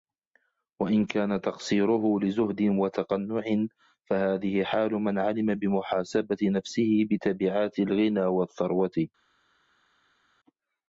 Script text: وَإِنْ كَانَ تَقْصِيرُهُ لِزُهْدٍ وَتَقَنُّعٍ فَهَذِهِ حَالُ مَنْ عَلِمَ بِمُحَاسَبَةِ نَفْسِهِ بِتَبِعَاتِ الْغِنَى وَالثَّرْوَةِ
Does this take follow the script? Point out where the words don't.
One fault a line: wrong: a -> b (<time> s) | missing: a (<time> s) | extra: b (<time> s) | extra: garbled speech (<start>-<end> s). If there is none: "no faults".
no faults